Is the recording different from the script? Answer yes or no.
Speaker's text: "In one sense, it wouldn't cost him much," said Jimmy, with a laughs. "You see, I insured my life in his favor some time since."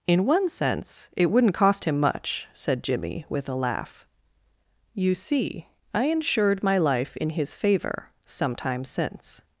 yes